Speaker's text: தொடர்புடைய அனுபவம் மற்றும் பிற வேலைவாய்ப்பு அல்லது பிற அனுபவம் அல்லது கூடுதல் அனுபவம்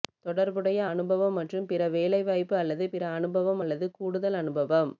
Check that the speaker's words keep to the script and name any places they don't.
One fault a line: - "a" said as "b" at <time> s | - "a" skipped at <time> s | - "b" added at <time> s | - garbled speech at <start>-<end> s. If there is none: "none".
none